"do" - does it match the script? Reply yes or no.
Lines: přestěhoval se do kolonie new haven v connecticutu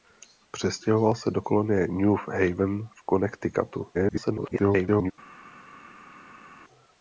yes